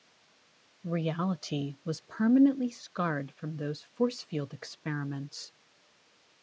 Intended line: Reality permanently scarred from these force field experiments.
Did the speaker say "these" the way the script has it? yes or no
no